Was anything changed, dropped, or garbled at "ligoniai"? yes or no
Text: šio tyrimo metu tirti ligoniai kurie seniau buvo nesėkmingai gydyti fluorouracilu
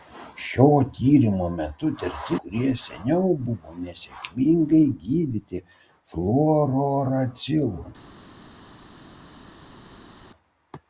yes